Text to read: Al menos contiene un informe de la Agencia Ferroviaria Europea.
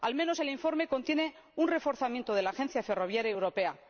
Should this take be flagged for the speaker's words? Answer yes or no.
yes